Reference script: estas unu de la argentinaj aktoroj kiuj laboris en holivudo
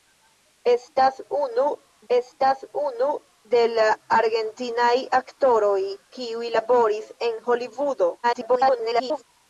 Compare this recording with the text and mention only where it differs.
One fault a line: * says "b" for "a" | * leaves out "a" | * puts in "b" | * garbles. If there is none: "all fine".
* puts in "estas unu"
* garbles